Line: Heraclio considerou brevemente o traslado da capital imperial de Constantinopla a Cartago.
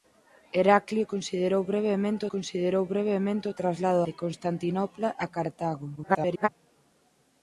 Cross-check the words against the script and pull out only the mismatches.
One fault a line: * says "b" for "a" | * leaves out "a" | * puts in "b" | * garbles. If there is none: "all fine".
* puts in "considerou brevemente"
* leaves out "da capital imperial"
* garbles